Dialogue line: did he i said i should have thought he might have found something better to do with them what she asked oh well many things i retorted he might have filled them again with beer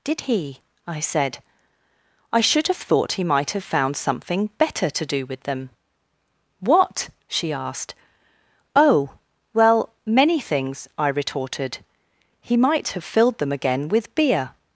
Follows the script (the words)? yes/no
yes